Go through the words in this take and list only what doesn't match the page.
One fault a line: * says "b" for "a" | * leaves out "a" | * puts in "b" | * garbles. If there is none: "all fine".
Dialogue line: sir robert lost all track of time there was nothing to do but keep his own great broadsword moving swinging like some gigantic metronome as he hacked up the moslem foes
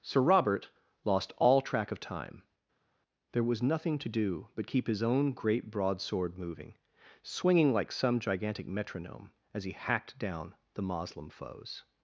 * says "down" for "up"